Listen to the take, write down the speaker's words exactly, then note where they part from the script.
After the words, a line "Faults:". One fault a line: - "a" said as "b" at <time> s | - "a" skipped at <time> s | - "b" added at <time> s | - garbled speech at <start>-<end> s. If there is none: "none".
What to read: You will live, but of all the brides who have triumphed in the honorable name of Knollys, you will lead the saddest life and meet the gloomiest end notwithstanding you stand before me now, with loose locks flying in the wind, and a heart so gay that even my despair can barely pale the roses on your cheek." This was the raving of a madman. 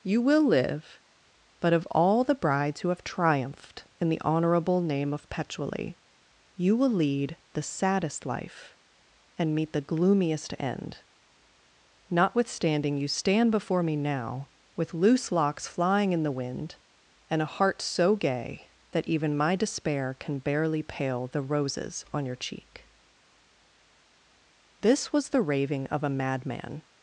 You will live, but of all the brides who have triumphed in the honorable name of Petually, you will lead the saddest life and meet the gloomiest end notwithstanding you stand before me now, with loose locks flying in the wind, and a heart so gay that even my despair can barely pale the roses on your cheek." This was the raving of a madman.
Faults:
- "Knollys" said as "Petually" at 5.3 s